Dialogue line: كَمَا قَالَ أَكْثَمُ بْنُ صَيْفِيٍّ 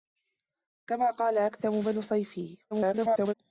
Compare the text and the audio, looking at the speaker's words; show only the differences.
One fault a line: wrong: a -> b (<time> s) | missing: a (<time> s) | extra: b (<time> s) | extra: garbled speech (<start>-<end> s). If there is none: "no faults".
extra: garbled speech (2.7-3.3 s)